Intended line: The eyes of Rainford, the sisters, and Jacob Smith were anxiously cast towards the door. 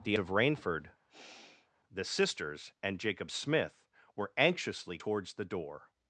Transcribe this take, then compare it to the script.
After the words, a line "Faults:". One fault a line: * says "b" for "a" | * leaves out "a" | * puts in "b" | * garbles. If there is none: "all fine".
The of Rainford, the sisters, and Jacob Smith were anxiously towards the door.
Faults:
* leaves out "eyes"
* leaves out "cast"